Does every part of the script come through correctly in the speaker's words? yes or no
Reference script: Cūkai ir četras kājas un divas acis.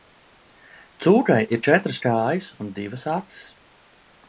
yes